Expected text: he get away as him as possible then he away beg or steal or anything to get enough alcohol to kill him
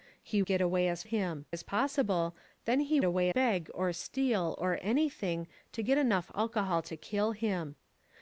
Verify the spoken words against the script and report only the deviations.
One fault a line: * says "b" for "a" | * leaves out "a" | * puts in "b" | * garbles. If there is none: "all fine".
all fine